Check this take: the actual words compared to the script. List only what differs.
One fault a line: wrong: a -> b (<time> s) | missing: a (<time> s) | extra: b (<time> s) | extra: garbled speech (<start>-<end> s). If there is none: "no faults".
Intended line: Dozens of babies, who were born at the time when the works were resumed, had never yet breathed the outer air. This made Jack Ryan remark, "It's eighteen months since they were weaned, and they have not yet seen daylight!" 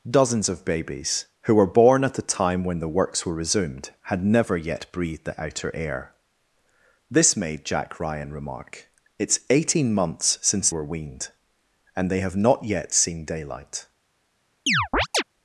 missing: they (10.7 s)